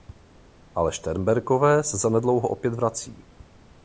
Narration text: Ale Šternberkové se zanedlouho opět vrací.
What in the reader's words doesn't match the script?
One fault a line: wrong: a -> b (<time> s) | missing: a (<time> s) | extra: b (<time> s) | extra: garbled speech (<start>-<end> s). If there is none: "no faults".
no faults